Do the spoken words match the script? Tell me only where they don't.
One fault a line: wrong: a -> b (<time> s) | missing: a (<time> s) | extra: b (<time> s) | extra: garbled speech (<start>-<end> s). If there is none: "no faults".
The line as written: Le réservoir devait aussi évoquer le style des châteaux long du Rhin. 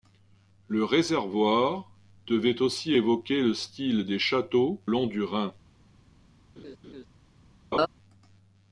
no faults